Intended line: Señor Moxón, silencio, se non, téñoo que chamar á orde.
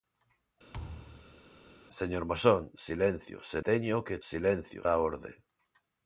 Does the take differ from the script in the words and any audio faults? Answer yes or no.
yes